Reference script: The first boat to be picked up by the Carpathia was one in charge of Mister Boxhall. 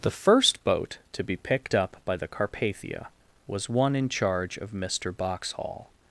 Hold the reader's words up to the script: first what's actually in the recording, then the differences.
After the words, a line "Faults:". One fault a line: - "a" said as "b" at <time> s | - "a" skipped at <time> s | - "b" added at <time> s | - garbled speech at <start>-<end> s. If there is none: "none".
The first boat to be picked up by the Carpathia was one in charge of Mister Boxhall.
Faults:
none